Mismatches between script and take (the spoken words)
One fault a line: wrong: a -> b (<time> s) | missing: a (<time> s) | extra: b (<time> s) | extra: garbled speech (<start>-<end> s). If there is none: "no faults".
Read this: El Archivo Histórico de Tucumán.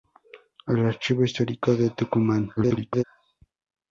extra: garbled speech (2.6-3.0 s)